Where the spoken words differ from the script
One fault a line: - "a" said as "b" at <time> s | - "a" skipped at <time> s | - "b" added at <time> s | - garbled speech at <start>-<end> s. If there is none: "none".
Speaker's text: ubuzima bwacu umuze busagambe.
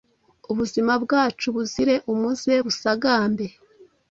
- "buzire" added at 1.6 s